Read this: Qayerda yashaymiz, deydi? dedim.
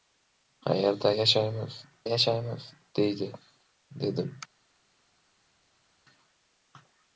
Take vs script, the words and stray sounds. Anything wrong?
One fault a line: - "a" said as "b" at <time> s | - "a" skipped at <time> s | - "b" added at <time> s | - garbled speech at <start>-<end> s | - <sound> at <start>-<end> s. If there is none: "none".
- "yashaymiz" added at 2.0 s